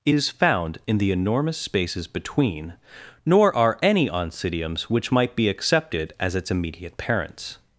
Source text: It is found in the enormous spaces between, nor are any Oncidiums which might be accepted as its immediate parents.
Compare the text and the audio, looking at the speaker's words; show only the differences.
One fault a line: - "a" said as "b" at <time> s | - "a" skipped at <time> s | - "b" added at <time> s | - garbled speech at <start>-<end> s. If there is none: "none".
none